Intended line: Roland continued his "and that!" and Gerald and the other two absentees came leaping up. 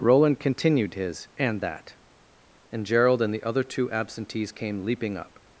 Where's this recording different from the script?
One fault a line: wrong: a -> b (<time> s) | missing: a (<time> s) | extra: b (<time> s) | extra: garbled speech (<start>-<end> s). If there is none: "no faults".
no faults